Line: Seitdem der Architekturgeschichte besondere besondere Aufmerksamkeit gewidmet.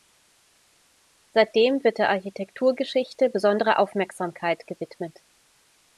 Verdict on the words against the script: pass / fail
fail